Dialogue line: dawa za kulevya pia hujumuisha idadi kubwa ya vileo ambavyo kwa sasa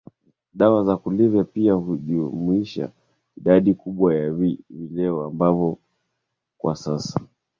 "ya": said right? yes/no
yes